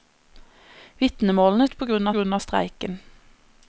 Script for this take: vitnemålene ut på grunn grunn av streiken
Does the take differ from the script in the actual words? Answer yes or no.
no